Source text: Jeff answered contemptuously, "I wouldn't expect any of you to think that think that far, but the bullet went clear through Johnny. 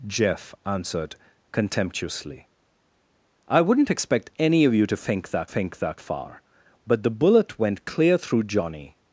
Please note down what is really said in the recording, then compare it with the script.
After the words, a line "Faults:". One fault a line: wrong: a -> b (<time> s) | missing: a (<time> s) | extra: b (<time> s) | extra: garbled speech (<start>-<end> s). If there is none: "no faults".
Jeff answered contemptuously, "I wouldn't expect any of you to think that think that far, but the bullet went clear through Johnny.
Faults:
no faults